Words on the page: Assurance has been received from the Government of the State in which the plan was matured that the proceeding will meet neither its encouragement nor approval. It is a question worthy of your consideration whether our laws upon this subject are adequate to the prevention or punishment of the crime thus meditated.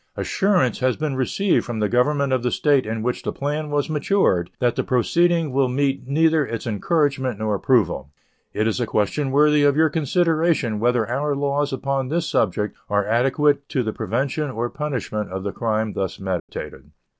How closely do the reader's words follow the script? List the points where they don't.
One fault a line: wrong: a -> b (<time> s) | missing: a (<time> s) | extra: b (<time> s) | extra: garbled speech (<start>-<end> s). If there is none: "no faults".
no faults